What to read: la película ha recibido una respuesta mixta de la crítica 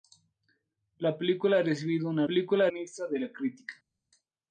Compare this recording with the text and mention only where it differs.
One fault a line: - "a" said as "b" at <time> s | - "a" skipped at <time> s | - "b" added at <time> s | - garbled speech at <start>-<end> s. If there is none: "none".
- "respuesta" said as "película" at 2.2 s